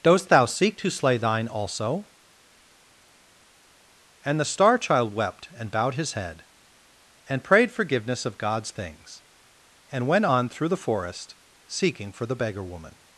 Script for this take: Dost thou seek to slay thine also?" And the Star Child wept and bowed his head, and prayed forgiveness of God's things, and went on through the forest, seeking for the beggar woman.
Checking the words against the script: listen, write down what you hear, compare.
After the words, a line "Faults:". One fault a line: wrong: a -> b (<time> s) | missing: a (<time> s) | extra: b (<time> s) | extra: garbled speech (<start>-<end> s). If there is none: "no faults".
Dost thou seek to slay thine also?" And the Star Child wept and bowed his head, and prayed forgiveness of God's things, and went on through the forest, seeking for the beggar woman.
Faults:
no faults